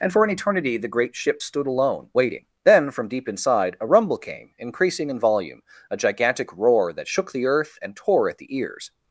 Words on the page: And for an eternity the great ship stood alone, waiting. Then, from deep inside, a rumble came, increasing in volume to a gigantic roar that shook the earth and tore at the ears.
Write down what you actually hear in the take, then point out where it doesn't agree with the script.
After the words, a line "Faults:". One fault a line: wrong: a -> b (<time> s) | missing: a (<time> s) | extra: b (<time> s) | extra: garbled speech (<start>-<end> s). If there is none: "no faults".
And for an eternity the great ship stood alone, waiting. Then, from deep inside, a rumble came, increasing in volume a gigantic roar that shook the earth and tore at the ears.
Faults:
missing: to (5.6 s)